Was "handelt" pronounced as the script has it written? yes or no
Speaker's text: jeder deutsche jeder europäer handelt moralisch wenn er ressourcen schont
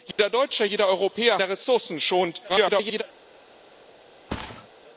no